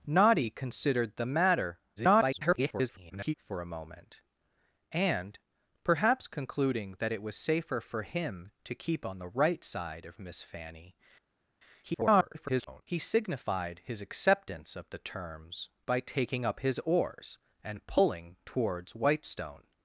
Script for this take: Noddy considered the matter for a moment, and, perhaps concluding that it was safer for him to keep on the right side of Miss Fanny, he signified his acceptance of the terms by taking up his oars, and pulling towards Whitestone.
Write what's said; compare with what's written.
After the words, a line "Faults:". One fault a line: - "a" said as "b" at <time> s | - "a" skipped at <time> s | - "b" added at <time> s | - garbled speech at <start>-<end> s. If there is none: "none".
Noddy considered the matter [garbled] for a moment, and, perhaps concluding that it was safer for him to keep on the right side of Miss Fanny, [garbled] he signified his acceptance of the terms by taking up his oars, and pulling towards Whitestone.
Faults:
- garbled speech at 2.0-3.3 s
- garbled speech at 11.8-12.8 s